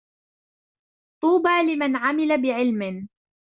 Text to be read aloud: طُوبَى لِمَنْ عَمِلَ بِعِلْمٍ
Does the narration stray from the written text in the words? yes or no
no